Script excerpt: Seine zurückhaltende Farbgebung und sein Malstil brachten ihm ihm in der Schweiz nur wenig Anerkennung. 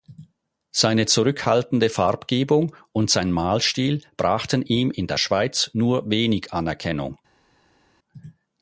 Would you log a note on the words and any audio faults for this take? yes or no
yes